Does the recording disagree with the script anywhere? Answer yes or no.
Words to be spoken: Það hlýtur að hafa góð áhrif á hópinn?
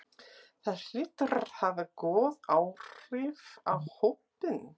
no